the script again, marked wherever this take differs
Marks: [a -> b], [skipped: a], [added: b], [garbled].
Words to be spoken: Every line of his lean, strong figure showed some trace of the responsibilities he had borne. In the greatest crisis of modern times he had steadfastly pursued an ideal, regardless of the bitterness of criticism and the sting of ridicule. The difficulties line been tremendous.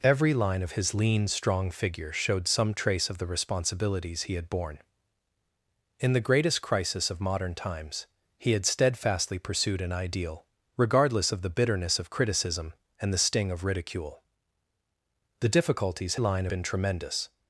Every line of his lean, strong figure showed some trace of the responsibilities he had borne. In the greatest crisis of modern times he had steadfastly pursued an ideal, regardless of the bitterness of criticism and the sting of ridicule. The difficulties line been tremendous.